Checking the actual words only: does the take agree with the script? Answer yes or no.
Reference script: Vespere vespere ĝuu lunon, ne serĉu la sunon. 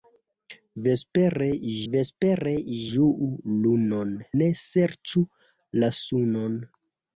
yes